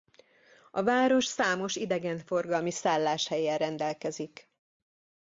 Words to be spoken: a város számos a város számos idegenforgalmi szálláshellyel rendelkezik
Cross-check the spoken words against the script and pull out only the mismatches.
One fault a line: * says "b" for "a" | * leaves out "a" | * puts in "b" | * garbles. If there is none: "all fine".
* leaves out "a város számos"